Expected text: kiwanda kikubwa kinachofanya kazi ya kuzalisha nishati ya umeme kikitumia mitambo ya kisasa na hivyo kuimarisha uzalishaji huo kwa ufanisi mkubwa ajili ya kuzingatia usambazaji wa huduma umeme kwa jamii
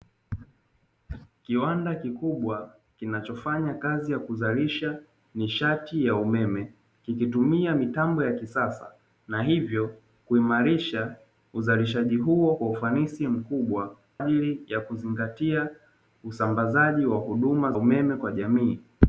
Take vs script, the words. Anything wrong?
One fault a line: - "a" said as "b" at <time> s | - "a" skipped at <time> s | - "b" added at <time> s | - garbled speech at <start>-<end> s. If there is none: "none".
none